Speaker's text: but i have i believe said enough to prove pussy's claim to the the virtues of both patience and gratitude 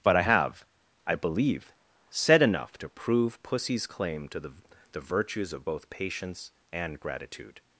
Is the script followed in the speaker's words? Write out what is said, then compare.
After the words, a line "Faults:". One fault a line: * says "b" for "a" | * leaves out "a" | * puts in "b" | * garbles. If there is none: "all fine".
but i have i believe said enough to prove pussy's claim to the the virtues of both patience and gratitude
Faults:
all fine